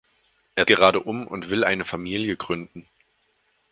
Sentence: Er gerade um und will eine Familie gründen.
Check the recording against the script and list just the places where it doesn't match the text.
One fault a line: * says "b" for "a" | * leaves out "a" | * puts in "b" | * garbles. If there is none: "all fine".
all fine